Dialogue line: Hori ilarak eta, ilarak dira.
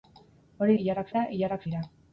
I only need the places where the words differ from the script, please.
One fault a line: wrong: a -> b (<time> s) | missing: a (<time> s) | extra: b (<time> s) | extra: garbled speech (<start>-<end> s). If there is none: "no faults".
no faults